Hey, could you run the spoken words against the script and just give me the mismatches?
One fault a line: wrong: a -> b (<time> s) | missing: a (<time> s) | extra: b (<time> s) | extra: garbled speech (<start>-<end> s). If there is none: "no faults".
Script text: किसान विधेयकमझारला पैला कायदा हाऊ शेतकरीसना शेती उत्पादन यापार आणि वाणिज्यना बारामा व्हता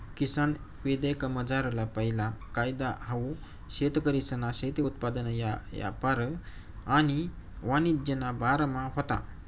no faults